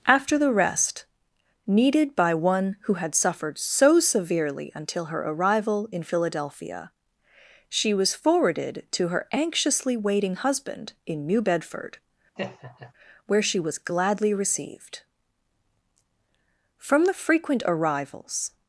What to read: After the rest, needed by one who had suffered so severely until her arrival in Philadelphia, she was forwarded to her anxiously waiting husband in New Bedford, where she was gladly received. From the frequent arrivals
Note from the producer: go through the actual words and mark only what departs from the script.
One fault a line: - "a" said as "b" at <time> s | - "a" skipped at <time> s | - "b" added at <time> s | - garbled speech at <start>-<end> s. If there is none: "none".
none